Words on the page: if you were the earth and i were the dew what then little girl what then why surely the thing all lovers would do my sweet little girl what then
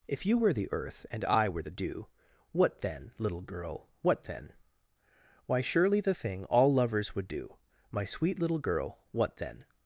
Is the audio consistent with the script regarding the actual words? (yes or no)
yes